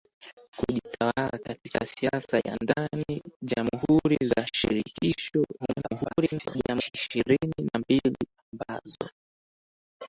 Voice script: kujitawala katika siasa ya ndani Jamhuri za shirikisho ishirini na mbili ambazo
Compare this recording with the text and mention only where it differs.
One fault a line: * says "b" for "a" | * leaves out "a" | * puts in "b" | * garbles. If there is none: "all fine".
* garbles